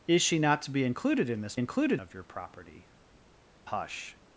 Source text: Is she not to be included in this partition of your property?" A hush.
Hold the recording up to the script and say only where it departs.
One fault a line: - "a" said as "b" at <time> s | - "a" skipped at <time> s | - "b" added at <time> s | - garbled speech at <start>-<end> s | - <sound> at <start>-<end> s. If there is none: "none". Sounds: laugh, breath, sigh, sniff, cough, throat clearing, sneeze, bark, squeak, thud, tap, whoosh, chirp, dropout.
- "partition" said as "included" at 1.6 s
- "A" skipped at 2.9 s